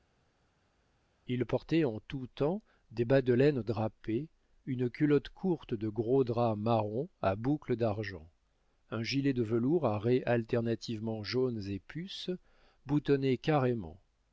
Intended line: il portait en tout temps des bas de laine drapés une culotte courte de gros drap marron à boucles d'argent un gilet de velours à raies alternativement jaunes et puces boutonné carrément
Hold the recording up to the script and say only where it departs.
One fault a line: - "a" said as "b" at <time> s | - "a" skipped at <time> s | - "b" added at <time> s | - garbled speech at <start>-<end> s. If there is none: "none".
none